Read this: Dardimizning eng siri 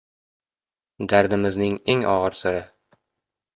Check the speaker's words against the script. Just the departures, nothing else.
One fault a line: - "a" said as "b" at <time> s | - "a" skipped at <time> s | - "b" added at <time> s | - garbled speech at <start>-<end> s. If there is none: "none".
- "og‘ir" added at 2.1 s